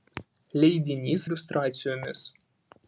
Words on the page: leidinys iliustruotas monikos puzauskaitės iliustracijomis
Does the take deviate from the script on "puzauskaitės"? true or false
true